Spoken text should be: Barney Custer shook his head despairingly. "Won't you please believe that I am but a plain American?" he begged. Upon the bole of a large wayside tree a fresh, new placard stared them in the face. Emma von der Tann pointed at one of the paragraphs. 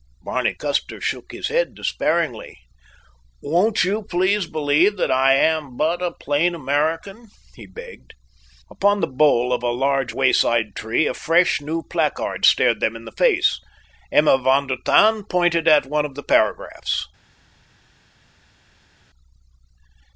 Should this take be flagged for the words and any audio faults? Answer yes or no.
no